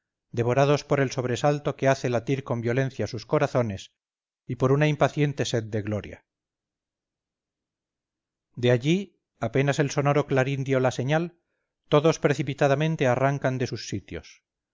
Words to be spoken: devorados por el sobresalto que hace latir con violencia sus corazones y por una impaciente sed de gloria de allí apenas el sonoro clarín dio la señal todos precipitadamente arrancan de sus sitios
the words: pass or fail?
pass